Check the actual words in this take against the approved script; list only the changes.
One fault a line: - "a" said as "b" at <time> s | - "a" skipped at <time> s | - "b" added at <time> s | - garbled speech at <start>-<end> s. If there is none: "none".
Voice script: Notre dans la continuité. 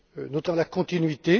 none